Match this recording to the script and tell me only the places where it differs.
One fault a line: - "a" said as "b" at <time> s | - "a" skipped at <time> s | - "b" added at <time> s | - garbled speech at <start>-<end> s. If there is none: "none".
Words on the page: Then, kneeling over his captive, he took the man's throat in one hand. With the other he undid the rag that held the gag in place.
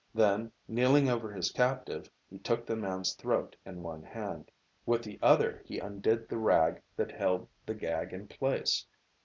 none